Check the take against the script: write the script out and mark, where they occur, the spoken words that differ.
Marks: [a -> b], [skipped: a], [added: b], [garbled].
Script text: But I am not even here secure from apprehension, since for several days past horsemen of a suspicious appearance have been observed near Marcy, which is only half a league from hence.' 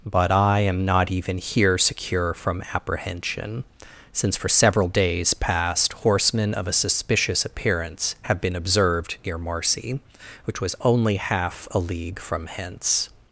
But I am not even here secure from apprehension, since for several days past horsemen of a suspicious appearance have been observed near Marcy, which [is -> was] only half a league from hence.'